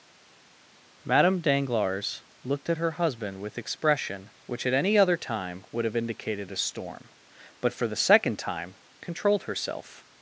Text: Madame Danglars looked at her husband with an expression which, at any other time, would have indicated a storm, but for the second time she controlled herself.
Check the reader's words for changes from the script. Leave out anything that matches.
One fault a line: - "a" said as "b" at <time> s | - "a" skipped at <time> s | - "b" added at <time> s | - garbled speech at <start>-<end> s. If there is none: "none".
- "an" skipped at 3.6 s
- "she" skipped at 8.7 s